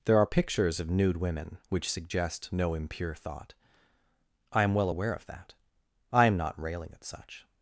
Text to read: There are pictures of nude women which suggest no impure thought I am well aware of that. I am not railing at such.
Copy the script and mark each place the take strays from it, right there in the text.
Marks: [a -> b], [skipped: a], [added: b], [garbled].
There are pictures of nude women which suggest no impure thought I am well aware of that. I am not railing at such.